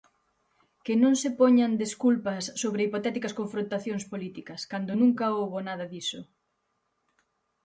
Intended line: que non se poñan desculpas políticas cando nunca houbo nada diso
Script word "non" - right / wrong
right